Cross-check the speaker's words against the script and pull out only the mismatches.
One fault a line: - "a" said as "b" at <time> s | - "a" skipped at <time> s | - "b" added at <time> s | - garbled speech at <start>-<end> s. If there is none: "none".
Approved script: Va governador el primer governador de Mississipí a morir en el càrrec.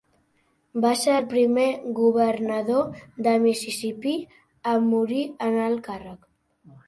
- "governador" said as "ser" at 1.0 s